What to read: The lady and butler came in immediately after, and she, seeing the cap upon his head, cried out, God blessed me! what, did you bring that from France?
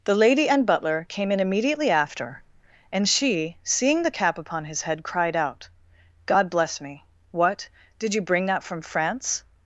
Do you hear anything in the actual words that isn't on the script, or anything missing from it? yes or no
yes